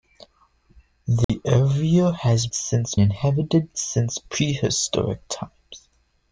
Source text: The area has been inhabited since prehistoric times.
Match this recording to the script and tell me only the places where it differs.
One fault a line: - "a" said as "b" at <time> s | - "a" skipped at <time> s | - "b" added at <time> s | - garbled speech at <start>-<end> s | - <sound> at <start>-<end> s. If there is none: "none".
- dropout at 1.2-1.3 s
- "been" said as "since" at 2.5 s